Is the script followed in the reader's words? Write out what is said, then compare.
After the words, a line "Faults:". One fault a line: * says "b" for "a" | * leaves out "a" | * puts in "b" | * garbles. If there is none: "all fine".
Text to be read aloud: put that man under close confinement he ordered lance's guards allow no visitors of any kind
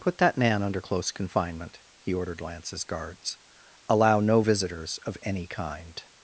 put that man under close confinement he ordered lance's guards allow no visitors of any kind
Faults:
all fine